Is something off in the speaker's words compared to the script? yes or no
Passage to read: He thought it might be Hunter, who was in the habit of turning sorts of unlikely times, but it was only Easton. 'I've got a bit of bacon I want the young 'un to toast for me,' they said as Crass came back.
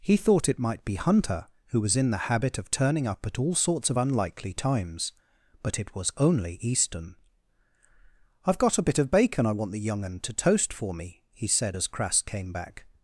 yes